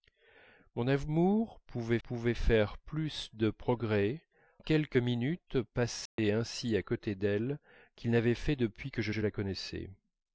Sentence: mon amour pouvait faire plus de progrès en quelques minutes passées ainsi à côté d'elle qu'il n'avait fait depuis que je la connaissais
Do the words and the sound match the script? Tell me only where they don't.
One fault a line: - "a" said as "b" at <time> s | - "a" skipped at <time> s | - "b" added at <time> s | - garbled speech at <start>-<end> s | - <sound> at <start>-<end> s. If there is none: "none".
- "pouvait" added at 2.0 s
- "en" skipped at 4.3 s
- dropout at 6.1-6.2 s
- "je" added at 9.1 s